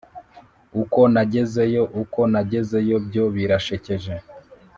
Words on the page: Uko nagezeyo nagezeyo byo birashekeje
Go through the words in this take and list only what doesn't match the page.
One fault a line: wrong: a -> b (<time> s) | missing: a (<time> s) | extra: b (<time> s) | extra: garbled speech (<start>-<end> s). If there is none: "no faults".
extra: uko (2.0 s)